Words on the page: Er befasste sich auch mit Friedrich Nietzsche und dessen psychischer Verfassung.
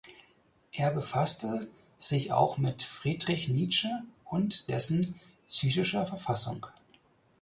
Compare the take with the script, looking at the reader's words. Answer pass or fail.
pass